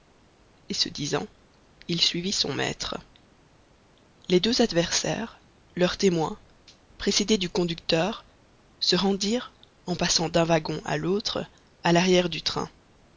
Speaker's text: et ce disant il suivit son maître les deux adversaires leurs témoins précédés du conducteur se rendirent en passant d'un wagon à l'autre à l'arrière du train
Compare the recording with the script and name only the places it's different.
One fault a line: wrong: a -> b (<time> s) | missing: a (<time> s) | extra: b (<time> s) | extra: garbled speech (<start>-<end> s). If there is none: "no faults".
no faults